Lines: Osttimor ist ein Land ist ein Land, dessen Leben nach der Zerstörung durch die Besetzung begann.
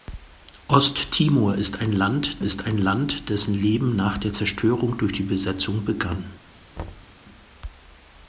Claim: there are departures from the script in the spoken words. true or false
false